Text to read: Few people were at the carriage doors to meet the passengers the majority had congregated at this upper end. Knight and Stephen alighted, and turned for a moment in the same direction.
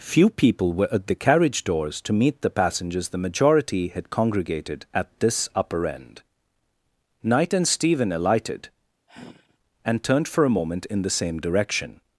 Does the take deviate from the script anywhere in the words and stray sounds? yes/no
yes